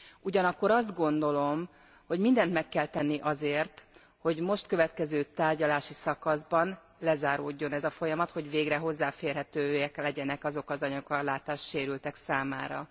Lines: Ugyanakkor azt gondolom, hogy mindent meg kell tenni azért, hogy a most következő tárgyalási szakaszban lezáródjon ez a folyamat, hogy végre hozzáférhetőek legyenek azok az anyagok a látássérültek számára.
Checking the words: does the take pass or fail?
pass